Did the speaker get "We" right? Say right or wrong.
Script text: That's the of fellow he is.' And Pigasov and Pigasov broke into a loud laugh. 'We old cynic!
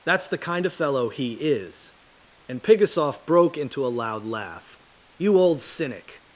wrong